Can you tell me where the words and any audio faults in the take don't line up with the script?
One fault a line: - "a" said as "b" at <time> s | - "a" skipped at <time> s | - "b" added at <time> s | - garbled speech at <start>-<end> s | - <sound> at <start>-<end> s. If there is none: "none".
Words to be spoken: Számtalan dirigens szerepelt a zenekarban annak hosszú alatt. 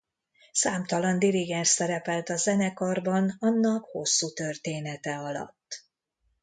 - "története" added at 4.3 s